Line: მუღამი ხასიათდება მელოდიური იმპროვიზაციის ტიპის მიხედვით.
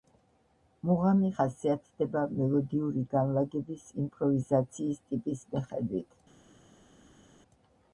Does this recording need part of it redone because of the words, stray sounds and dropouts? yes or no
yes